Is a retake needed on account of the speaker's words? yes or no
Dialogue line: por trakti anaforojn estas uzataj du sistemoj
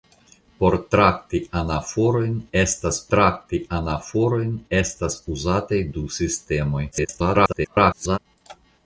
yes